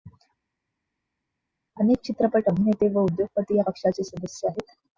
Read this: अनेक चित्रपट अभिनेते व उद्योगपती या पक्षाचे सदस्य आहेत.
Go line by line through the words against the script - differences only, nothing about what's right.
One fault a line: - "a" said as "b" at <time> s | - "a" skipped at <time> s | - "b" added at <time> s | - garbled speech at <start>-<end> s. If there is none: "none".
none